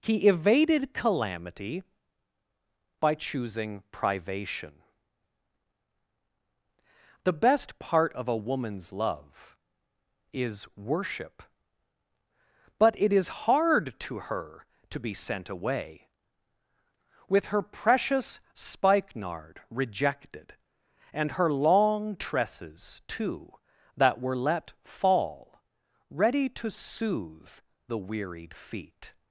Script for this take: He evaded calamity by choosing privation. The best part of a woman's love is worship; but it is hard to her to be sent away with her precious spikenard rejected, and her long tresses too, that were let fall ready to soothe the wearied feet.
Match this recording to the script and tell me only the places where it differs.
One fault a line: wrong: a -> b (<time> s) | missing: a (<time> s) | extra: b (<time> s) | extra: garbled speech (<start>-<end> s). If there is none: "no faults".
no faults